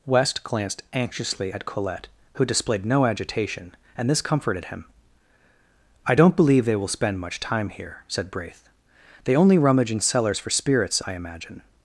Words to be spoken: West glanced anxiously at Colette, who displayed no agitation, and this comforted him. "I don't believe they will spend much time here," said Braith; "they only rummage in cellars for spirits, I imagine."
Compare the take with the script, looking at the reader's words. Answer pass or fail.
pass